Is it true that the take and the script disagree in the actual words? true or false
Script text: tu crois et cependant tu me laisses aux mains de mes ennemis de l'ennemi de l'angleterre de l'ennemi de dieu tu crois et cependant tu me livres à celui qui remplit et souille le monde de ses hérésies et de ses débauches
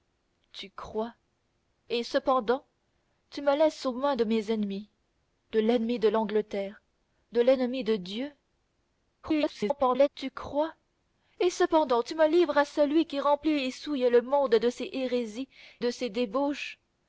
true